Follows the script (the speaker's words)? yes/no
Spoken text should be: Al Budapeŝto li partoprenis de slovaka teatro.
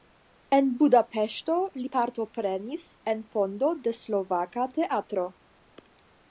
no